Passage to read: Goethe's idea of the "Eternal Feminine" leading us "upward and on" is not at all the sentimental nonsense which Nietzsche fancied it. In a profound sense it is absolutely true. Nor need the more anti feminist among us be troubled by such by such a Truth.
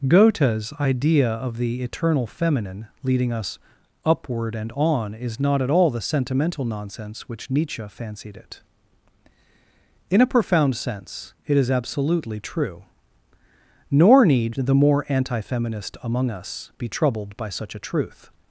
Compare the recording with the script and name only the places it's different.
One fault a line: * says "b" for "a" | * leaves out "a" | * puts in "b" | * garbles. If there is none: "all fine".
* leaves out "by such"